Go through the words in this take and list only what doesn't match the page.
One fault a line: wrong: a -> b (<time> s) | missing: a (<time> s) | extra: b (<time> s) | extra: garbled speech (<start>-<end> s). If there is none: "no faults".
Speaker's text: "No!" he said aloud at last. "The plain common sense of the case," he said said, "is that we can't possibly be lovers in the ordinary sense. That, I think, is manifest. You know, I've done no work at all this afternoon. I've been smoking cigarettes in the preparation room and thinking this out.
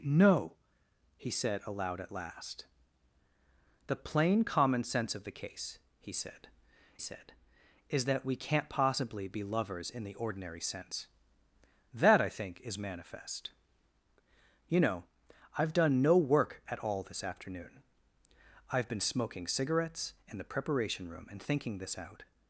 no faults